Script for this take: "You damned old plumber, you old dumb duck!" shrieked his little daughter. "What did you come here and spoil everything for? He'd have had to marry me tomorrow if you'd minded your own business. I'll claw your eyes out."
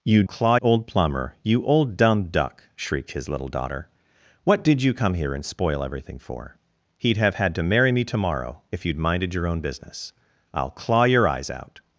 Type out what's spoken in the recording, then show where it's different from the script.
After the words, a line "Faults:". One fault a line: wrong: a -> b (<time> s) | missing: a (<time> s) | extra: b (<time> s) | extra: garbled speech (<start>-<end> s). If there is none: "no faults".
"You claw old plumber, you old dumb duck!" shrieked his little daughter. "What did you come here and spoil everything for? He'd have had to marry me tomorrow if you'd minded your own business. I'll claw your eyes out."
Faults:
wrong: damned -> claw (0.2 s)